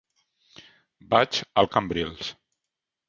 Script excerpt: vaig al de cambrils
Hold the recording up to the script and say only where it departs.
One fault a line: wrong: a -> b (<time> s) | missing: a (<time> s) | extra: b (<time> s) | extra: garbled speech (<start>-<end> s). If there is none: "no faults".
no faults